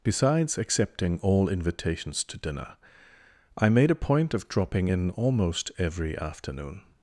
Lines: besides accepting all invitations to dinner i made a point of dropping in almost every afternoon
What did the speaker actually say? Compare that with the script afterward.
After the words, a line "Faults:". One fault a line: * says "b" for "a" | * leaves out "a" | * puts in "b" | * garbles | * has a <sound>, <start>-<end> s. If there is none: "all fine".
besides accepting all invitations to dinner i made a point of dropping in almost every afternoon
Faults:
all fine